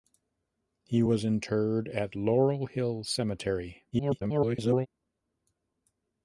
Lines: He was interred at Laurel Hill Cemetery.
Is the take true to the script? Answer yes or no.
no